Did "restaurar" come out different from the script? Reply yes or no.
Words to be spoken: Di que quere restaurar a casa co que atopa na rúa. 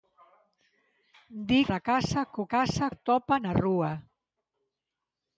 yes